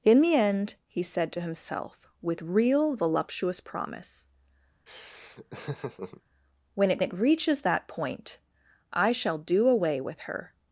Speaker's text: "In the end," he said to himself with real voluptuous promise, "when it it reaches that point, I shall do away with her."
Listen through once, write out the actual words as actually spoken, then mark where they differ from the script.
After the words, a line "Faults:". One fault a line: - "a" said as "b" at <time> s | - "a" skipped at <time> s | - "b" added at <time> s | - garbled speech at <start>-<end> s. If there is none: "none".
"In the end," he said to himself with real voluptuous promise, "when it it reaches that point, I shall do away with her."
Faults:
none